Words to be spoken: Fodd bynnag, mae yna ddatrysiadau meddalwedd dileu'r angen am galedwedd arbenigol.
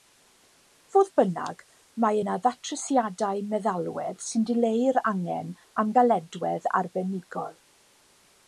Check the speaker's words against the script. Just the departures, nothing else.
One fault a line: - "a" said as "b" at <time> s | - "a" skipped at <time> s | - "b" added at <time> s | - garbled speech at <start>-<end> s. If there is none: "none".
- "sy'n" added at 4.3 s